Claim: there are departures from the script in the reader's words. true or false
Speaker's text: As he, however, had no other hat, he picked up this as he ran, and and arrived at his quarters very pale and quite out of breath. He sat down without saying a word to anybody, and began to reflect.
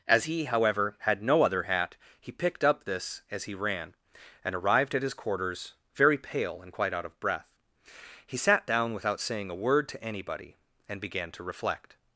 true